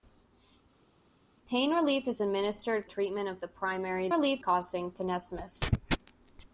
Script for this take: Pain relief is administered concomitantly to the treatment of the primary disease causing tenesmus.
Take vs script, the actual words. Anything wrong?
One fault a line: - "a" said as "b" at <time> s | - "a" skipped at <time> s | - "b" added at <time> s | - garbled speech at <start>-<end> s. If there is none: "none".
- "concomitantly to the" skipped at 2.9 s
- "disease" said as "relief" at 4.1 s